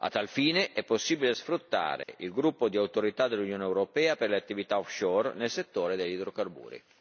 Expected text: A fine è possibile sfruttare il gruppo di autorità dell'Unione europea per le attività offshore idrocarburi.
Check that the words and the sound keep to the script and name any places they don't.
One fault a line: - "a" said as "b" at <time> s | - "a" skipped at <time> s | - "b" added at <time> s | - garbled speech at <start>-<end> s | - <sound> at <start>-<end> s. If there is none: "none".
- "tal" added at 0.1 s
- dropout at 2.0-2.1 s
- "nel settore degli" added at 5.3 s